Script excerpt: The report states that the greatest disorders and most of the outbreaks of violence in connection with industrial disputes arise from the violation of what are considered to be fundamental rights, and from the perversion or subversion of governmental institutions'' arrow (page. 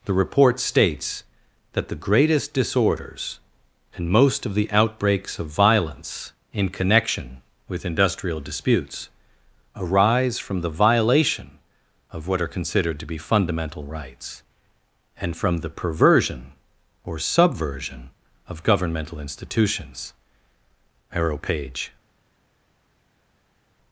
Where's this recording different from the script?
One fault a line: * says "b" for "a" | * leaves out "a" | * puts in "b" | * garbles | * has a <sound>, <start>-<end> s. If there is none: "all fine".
all fine